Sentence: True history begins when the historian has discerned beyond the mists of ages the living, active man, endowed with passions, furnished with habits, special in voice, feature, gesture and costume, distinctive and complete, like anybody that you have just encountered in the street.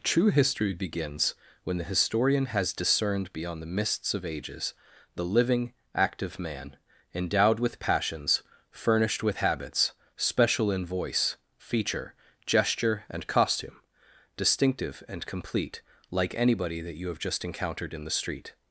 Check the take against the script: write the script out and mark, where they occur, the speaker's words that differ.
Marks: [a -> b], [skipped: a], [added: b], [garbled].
True history begins when the historian has discerned beyond the mists of ages the living, active man, endowed with passions, furnished with habits, special in voice, feature, gesture and costume, distinctive and complete, like anybody that you have just encountered in the street.